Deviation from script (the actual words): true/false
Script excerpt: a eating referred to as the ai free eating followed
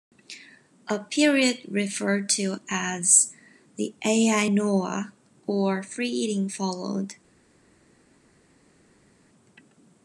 true